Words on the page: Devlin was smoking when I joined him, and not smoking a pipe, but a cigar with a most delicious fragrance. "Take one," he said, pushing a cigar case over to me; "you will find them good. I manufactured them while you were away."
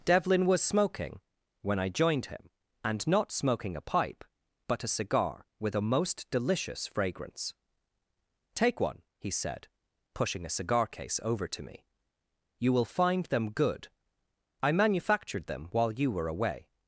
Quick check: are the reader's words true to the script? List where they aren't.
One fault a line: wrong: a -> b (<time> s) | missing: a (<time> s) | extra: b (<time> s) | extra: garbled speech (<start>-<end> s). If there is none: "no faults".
no faults